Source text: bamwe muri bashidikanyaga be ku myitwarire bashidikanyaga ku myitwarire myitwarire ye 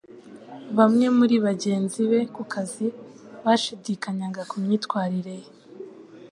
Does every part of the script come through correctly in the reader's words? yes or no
no